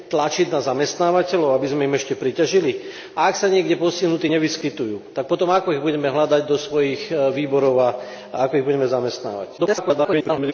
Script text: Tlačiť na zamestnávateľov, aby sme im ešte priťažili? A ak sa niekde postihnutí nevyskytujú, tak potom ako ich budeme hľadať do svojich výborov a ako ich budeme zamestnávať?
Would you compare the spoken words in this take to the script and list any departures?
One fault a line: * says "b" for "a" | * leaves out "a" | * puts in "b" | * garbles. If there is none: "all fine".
* garbles